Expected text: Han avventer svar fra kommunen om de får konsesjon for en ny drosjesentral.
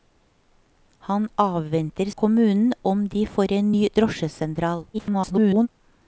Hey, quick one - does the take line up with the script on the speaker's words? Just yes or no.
no